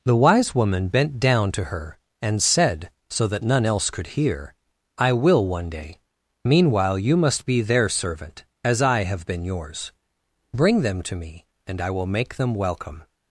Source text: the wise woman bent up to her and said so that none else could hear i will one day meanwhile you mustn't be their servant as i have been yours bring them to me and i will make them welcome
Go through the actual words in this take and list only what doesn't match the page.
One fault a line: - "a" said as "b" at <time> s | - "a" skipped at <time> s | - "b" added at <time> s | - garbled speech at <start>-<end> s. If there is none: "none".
- "up" said as "down" at 1.2 s
- "mustn't" said as "must" at 7.2 s